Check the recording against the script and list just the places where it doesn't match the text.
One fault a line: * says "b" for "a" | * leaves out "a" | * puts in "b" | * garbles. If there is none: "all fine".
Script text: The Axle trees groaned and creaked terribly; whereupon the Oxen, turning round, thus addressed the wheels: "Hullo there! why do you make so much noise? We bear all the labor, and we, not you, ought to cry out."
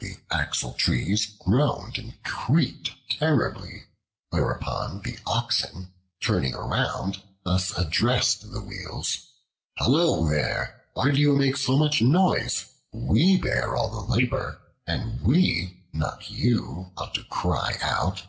all fine